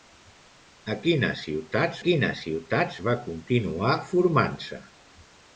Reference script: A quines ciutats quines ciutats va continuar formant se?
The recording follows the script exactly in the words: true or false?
true